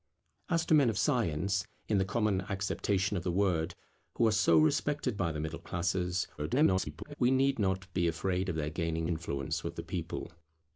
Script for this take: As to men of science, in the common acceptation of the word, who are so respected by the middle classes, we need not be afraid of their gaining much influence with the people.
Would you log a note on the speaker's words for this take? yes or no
yes